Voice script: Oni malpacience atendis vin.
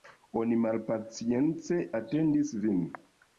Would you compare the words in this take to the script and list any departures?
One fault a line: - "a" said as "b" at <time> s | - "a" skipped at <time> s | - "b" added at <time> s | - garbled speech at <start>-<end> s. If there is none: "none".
none